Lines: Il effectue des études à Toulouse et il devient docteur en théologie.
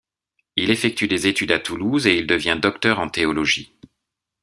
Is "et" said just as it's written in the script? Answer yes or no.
yes